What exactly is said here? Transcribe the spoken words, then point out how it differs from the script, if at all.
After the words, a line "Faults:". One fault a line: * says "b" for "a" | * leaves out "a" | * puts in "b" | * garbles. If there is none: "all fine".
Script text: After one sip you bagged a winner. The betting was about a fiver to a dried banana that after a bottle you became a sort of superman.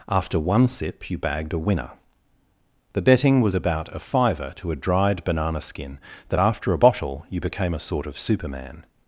After one sip you bagged a winner. The betting was about a fiver to a dried banana skin that after a bottle you became a sort of superman.
Faults:
* puts in "skin"